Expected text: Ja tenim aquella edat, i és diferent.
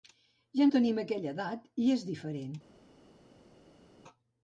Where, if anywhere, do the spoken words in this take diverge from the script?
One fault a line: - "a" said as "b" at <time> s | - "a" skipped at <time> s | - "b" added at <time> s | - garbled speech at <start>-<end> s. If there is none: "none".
none